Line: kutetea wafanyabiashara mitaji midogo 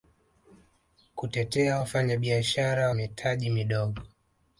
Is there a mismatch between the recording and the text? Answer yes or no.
no